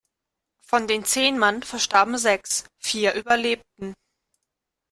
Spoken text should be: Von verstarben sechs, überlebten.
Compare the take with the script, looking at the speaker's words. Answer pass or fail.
fail